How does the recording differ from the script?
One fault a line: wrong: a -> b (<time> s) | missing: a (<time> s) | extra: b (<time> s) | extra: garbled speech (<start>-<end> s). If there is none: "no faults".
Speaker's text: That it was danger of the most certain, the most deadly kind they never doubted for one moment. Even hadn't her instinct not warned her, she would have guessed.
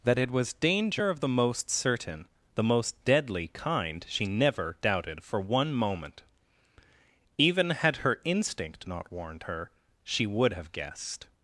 wrong: they -> she (4.1 s)
wrong: hadn't -> had (7.7 s)